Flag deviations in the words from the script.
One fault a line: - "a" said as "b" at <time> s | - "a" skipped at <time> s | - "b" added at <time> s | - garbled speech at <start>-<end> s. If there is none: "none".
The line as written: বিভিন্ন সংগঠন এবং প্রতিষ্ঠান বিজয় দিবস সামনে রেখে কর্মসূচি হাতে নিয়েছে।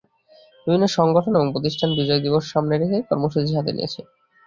none